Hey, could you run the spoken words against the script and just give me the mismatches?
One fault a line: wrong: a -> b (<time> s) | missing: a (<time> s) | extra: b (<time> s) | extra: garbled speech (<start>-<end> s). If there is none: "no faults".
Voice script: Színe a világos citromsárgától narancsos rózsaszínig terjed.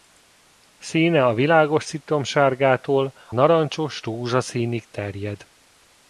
no faults